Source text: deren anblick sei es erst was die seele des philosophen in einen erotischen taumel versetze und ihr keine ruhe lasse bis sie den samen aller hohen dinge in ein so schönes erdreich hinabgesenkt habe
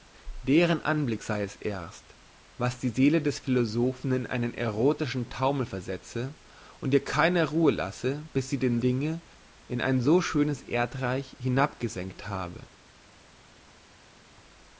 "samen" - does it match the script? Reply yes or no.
no